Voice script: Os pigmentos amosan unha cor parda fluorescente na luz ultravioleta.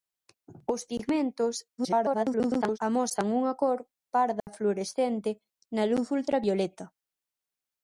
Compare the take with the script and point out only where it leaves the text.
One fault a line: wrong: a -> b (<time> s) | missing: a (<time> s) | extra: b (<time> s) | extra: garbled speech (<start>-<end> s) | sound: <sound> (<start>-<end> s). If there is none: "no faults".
extra: garbled speech (1.8-2.8 s)
sound: dropout (4.4-4.5 s)